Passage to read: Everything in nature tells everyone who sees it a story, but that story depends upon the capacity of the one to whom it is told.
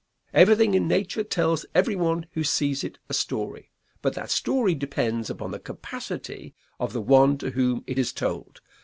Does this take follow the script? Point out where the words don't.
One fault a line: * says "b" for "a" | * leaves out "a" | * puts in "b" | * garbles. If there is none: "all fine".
all fine